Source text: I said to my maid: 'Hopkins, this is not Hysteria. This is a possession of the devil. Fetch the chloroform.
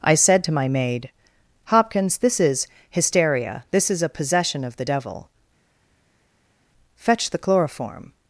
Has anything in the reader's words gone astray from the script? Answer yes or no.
yes